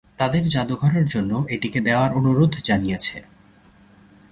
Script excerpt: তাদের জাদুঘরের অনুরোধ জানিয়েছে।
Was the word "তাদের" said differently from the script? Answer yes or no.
no